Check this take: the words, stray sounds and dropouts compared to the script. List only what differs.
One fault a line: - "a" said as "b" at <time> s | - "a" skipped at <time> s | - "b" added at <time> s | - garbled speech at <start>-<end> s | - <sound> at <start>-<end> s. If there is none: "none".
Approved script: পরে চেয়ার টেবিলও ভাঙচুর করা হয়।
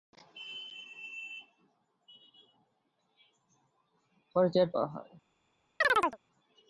- "টেবিলও ভাঙচুর" skipped at 4.7 s
- chirp at 5.8-6.2 s